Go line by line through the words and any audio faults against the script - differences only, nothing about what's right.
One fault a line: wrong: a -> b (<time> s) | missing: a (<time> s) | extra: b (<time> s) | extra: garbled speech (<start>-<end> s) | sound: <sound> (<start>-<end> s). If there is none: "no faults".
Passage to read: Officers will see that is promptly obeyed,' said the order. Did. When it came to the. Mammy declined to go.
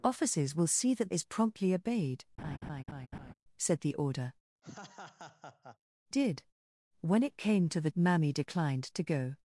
sound: laugh (2.4-3.3 s)
sound: laugh (4.6-5.8 s)